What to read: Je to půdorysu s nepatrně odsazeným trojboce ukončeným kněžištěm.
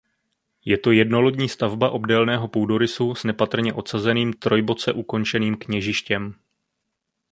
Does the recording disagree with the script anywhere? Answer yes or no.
yes